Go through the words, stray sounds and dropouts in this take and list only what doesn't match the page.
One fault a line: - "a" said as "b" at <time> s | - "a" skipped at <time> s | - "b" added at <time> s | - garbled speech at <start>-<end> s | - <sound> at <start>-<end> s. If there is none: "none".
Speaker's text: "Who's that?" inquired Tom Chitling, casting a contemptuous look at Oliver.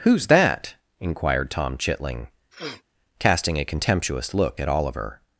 - sniff at 2.5-2.8 s